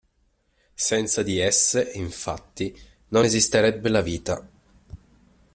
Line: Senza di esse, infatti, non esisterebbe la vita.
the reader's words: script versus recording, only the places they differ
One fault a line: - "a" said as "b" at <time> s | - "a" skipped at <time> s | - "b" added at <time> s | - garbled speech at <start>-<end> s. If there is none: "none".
none